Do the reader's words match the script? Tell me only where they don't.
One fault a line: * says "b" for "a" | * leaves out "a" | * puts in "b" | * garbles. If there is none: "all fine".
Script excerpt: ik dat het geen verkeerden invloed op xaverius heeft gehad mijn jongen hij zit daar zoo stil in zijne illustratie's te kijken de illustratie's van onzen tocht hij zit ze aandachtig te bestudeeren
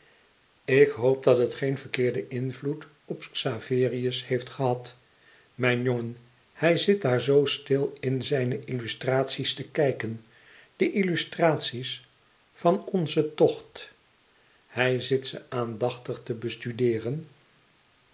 * puts in "hoop"